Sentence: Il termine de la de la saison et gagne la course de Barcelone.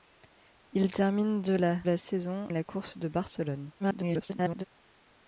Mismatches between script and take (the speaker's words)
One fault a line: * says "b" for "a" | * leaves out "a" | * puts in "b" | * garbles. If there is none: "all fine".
* leaves out "de"
* leaves out "et gagne"
* garbles